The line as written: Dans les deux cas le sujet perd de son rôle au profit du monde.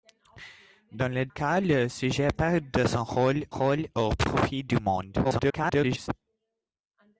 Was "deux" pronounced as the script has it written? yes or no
no